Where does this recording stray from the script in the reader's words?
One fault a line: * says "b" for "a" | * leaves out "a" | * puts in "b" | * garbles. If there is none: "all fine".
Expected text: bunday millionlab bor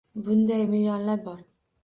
all fine